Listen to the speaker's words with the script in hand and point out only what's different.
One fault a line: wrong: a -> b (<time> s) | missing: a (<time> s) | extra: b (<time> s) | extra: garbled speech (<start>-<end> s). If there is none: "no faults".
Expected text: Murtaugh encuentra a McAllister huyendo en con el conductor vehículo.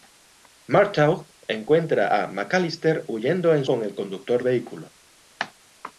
no faults